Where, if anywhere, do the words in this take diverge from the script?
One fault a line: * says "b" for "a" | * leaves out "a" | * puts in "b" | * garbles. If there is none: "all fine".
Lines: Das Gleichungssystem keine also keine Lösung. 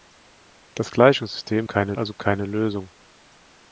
all fine